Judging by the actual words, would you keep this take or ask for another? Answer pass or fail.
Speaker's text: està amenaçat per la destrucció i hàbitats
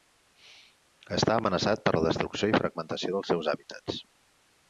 fail